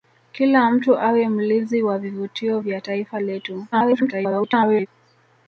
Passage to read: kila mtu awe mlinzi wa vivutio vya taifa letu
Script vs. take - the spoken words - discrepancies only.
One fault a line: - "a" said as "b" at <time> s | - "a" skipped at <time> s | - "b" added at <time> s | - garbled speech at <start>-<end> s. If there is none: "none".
- garbled speech at 3.7-4.9 s